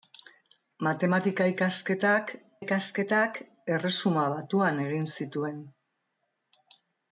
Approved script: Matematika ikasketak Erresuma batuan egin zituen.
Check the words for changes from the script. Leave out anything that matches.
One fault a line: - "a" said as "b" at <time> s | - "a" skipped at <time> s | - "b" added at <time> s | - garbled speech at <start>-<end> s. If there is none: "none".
- "ikasketak" added at 2.6 s